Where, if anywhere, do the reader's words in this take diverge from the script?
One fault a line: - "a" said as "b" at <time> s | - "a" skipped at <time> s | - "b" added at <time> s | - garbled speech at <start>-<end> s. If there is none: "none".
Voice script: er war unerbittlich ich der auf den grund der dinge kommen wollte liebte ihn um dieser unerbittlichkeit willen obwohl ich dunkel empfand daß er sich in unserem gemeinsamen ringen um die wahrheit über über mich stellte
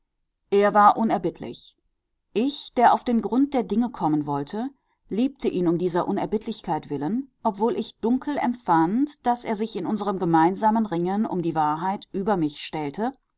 - "über" skipped at 12.4 s